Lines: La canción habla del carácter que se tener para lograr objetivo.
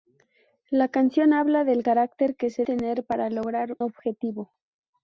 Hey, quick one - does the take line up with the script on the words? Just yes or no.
yes